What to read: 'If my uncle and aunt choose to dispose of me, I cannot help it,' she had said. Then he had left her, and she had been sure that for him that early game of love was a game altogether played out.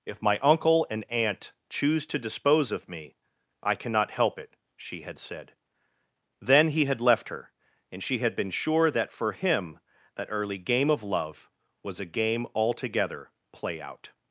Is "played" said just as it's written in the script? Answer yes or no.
no